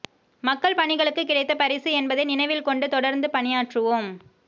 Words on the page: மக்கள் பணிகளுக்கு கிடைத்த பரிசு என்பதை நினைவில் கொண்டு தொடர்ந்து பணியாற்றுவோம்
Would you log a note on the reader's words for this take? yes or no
no